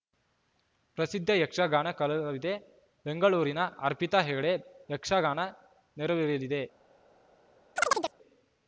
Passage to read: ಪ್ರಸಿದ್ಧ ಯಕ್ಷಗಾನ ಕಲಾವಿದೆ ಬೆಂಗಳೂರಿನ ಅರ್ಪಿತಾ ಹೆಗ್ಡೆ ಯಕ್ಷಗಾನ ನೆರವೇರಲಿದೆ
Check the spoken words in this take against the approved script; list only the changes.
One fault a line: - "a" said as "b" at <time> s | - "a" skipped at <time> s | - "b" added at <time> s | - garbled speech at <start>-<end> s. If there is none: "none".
none